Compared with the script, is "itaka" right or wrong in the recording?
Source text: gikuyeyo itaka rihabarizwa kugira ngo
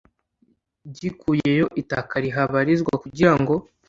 right